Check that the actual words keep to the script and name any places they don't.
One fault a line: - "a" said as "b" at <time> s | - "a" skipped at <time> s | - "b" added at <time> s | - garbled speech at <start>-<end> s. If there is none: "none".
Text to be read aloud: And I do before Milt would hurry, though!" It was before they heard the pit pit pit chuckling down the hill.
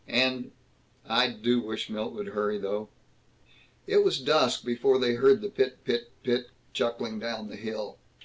- "before" said as "wish" at 1.6 s
- "dusk" added at 4.2 s